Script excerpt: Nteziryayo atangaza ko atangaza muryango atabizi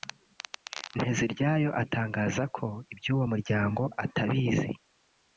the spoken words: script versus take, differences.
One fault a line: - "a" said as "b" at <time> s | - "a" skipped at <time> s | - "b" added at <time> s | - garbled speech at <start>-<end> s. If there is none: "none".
- "atangaza" said as "iby'uwo" at 2.9 s